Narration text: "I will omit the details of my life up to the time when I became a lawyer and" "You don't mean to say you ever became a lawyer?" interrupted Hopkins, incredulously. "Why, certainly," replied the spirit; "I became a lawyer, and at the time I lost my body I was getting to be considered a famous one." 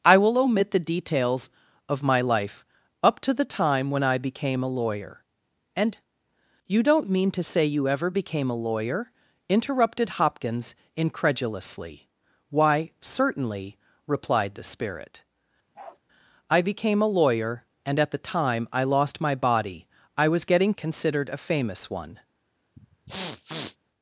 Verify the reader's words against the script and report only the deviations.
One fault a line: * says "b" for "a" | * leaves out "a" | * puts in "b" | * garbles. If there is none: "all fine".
* leaves out "to be"